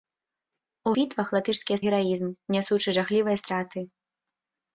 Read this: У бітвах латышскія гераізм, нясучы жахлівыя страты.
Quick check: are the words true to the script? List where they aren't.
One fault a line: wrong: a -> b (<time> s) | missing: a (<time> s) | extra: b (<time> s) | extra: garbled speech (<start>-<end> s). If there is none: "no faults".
no faults